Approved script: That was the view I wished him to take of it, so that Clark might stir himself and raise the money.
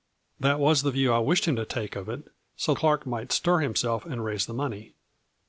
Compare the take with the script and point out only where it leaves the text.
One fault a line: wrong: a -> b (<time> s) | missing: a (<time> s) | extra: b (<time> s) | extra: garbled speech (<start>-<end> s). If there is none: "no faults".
missing: that (2.7 s)